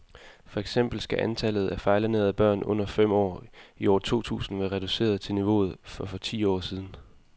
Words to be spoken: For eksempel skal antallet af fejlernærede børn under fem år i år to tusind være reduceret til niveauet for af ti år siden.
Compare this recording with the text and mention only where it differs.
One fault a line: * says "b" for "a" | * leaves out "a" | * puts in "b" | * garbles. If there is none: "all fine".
* says "for" for "af"